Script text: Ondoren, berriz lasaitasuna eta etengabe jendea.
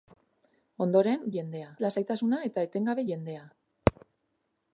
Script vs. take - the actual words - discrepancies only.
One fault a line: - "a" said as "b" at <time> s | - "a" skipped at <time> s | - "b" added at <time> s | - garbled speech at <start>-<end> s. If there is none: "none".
- "berriz" said as "jendea" at 1.4 s